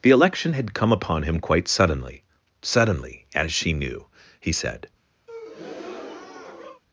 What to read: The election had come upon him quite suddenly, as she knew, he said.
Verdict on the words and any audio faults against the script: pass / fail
fail